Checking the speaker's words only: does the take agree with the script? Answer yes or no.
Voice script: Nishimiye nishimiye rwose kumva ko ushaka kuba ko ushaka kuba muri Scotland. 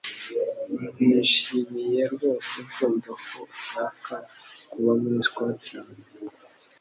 no